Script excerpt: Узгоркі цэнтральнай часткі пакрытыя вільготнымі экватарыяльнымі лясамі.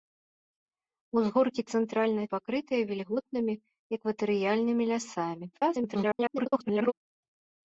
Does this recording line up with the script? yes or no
no